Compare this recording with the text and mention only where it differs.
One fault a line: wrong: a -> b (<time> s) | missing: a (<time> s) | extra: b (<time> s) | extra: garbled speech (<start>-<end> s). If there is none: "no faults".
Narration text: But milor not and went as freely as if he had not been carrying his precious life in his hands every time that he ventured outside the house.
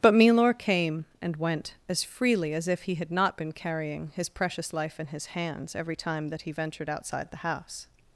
wrong: not -> came (0.6 s)